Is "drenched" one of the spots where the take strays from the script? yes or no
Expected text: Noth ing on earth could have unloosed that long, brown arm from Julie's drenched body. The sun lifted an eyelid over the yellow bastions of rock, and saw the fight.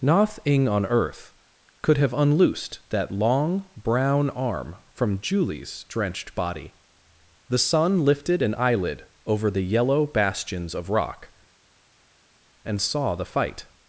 no